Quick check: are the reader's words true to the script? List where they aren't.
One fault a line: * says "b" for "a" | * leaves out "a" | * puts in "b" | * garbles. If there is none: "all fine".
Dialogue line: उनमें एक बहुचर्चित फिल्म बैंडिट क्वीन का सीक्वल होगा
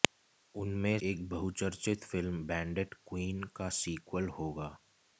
all fine